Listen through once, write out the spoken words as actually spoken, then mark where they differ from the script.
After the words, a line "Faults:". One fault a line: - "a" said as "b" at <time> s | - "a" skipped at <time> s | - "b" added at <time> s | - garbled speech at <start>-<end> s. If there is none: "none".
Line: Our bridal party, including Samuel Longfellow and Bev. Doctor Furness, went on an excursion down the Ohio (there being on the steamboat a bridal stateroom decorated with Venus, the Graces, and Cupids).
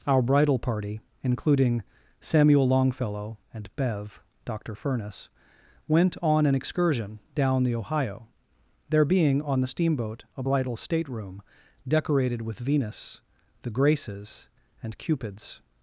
Our bridal party, including Samuel Longfellow and Bev. Doctor Furness, went on an excursion down the Ohio (there being on the steamboat a bridal stateroom decorated with Venus, the Graces, and Cupids).
Faults:
none